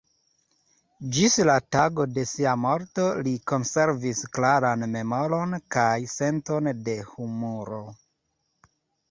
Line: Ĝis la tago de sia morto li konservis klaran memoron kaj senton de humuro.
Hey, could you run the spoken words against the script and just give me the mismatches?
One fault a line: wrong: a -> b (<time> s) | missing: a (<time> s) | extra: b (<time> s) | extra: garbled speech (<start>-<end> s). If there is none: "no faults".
no faults